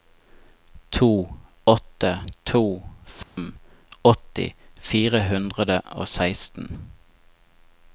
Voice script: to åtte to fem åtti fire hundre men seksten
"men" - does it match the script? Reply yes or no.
no